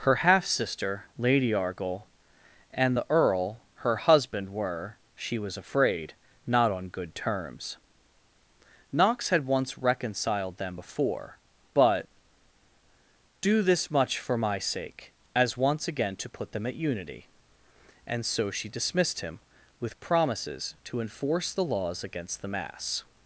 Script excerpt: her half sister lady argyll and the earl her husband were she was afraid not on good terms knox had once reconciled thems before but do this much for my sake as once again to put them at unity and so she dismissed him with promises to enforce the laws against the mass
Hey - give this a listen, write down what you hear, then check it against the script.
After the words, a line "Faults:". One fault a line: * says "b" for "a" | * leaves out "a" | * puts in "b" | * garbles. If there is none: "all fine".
her half sister lady argyll and the earl her husband were she was afraid not on good terms knox had once reconciled them before but do this much for my sake as once again to put them at unity and so she dismissed him with promises to enforce the laws against the mass
Faults:
* says "them" for "thems"